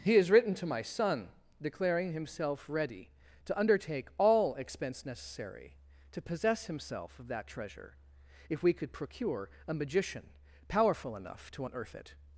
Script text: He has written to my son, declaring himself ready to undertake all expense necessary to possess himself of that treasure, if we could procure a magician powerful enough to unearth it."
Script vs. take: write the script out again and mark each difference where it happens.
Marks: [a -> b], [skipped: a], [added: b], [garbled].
He has written to my son, declaring himself ready to undertake all expense necessary to possess himself of that treasure, if we could procure a magician powerful enough to unearth it."